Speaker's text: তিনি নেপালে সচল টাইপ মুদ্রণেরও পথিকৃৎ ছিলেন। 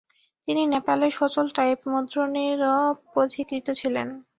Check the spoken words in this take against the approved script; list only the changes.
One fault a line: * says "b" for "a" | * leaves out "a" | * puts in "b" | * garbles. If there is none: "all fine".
all fine